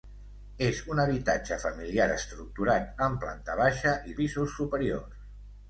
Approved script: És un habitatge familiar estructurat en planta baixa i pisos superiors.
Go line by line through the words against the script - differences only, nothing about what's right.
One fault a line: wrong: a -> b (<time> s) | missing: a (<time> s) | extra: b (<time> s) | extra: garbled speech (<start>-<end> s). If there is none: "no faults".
no faults